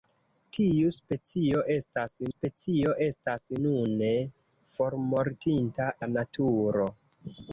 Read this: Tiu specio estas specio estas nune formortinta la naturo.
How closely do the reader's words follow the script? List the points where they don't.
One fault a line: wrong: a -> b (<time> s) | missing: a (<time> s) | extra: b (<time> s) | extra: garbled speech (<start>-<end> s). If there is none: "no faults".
no faults